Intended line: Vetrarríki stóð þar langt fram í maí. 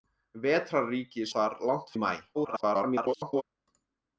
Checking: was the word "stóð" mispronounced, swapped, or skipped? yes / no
yes